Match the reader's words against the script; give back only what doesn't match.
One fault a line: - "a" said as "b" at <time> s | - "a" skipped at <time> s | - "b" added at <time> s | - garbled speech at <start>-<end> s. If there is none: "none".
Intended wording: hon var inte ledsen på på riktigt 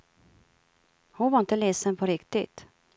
- "på" skipped at 2.1 s